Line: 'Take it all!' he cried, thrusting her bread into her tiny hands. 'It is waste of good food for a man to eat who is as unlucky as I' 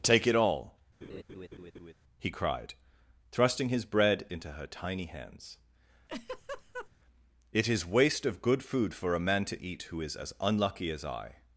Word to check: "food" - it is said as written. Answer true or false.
true